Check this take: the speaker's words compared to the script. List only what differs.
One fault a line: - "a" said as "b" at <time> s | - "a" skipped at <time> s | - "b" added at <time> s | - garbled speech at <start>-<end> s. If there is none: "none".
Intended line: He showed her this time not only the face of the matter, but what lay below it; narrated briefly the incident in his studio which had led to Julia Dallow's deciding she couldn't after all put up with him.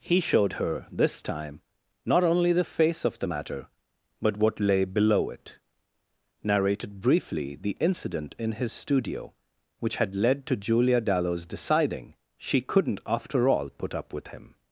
none